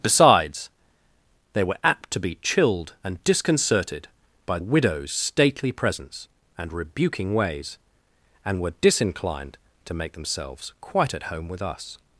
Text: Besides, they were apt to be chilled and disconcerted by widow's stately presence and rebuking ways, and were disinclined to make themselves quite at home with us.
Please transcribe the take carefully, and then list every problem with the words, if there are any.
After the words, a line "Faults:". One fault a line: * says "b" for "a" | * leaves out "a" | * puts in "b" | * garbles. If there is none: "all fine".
Besides, they were apt to be chilled and disconcerted by widow's stately presence and rebuking ways, and were disinclined to make themselves quite at home with us.
Faults:
all fine